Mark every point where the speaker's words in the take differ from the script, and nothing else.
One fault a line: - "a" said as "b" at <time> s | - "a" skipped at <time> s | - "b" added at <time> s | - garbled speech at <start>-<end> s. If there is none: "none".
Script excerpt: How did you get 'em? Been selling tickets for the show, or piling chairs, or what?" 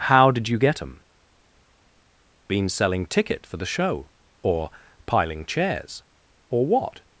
- "tickets" said as "ticket" at 3.0 s